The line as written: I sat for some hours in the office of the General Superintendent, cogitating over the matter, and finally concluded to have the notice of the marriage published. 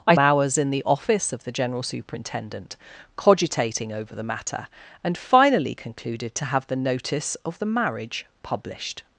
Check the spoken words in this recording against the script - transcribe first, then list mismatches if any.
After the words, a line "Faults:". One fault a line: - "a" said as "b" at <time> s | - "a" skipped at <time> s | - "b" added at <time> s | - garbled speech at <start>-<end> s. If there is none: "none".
I hours in the office of the General Superintendent, cogitating over the matter, and finally concluded to have the notice of the marriage published.
Faults:
- "sat for some" skipped at 0.1 s